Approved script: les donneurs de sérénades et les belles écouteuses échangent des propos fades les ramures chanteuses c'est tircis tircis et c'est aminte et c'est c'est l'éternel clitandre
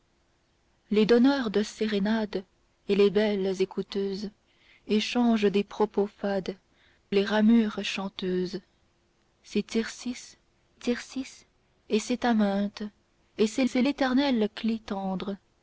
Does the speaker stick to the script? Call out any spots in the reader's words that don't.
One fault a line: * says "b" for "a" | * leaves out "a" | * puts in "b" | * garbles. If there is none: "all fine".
all fine